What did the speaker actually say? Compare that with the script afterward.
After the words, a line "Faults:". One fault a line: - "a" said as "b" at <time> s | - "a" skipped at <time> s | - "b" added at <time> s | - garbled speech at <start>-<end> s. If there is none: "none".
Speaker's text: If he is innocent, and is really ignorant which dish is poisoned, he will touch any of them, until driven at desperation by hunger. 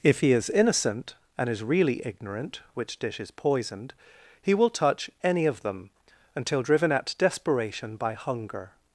If he is innocent, and is really ignorant which dish is poisoned, he will touch any of them, until driven at desperation by hunger.
Faults:
none